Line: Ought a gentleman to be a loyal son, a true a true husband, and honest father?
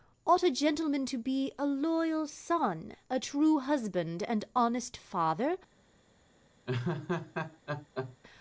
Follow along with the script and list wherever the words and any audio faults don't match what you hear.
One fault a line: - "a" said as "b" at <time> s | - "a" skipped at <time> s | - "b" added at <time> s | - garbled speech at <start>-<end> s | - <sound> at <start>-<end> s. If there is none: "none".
- "a true" skipped at 3.6 s
- laugh at 6.7-8.2 s